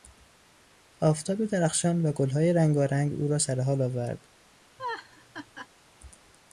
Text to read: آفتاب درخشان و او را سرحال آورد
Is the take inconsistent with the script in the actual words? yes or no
yes